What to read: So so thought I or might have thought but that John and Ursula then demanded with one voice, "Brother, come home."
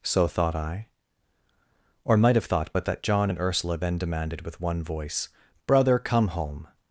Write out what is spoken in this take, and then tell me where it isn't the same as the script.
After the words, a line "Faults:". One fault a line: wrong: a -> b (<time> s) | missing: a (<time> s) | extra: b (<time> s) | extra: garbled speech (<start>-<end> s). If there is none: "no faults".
So thought I or might have thought but that John and Ursula then demanded with one voice, "Brother, come home."
Faults:
missing: so (0.3 s)